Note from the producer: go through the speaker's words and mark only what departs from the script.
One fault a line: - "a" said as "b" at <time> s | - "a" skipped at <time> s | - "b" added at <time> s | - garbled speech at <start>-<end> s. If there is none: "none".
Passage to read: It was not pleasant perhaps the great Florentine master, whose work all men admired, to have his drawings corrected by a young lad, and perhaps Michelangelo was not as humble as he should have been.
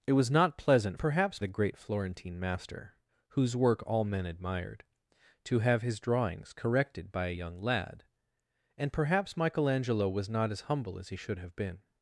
none